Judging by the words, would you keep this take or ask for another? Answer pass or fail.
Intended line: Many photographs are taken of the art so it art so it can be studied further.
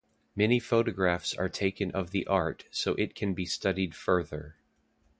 fail